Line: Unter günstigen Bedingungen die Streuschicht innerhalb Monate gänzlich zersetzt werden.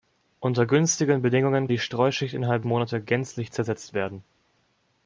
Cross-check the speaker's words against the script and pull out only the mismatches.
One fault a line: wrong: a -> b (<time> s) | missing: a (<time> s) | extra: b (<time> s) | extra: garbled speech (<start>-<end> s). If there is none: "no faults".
no faults